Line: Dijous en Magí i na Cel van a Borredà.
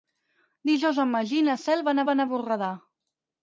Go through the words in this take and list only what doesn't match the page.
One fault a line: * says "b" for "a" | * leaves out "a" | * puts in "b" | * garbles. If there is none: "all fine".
* puts in "van"